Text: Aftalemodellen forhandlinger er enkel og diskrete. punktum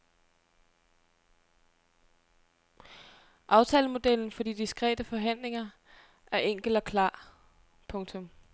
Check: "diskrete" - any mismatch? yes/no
yes